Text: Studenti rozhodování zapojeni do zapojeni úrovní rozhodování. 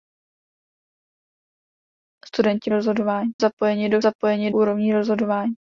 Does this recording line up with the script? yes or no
yes